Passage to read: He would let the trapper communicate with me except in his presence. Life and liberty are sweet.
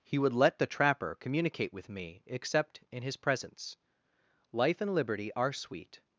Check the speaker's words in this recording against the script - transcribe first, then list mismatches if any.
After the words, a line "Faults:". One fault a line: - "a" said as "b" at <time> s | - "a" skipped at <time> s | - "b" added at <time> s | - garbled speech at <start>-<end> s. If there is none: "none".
He would let the trapper communicate with me except in his presence. Life and liberty are sweet.
Faults:
none